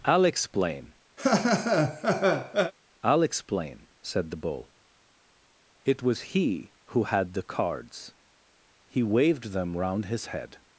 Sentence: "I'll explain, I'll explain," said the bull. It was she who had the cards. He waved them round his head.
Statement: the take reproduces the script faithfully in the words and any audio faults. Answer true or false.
false